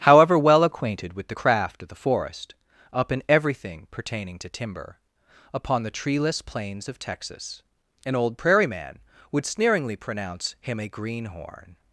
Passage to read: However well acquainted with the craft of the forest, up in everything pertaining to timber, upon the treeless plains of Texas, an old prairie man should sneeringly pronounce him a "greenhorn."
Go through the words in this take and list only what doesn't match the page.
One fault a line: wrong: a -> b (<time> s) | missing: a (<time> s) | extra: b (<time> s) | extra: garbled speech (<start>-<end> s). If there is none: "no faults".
wrong: should -> would (9.3 s)